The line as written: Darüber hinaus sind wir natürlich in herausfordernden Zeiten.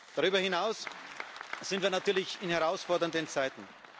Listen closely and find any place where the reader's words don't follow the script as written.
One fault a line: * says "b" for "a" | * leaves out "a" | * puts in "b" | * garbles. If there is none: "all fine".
all fine